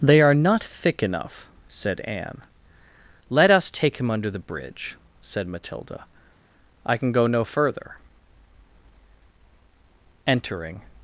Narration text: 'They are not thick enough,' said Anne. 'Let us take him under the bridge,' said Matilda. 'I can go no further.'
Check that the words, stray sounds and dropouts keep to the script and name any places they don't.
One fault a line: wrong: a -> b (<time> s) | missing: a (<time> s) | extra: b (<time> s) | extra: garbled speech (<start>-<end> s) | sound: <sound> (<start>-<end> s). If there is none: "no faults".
extra: Entering (10.2 s)